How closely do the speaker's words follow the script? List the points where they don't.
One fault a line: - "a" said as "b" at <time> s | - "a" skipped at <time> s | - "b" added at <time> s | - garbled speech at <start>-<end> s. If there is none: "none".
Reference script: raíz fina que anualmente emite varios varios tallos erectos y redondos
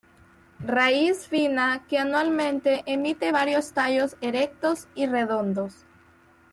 - "varios" skipped at 3.7 s